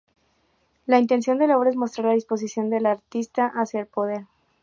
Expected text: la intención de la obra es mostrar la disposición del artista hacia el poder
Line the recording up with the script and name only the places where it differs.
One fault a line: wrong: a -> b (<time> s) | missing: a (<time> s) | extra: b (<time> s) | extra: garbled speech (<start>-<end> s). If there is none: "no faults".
no faults